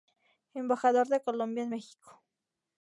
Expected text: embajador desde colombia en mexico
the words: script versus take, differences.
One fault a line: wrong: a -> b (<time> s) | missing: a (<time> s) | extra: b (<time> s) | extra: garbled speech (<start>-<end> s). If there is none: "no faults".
wrong: desde -> de (1.1 s)